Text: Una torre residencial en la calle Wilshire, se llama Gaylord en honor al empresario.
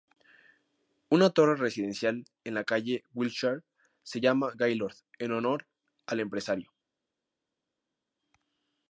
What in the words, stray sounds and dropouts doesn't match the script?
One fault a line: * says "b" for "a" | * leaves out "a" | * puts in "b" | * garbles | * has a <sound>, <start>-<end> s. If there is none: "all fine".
all fine